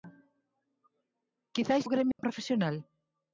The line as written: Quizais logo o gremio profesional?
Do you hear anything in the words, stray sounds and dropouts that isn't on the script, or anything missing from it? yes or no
yes